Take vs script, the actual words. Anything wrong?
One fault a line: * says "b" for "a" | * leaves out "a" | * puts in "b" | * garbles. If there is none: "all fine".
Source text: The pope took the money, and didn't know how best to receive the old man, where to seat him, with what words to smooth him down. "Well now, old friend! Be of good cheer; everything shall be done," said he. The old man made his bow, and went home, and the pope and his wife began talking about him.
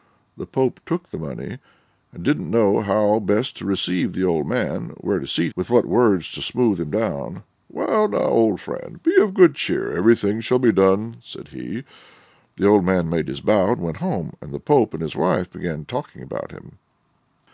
* leaves out "him"